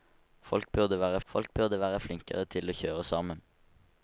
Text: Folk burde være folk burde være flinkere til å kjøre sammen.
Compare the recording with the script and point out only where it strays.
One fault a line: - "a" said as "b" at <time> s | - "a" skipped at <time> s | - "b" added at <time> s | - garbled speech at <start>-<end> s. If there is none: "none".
none